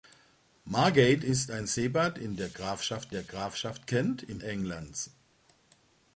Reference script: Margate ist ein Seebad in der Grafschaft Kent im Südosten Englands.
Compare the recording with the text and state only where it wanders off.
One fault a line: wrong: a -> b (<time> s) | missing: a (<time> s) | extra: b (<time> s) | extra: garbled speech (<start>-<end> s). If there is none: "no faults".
extra: der Grafschaft (3.1 s)
missing: Südosten (4.4 s)